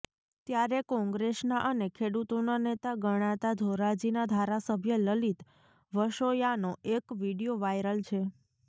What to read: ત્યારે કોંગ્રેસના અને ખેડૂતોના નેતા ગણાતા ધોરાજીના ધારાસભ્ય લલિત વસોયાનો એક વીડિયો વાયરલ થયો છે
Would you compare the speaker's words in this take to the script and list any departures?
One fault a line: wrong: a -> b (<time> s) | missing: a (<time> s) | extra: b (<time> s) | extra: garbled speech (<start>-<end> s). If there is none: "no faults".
missing: થયો (8.0 s)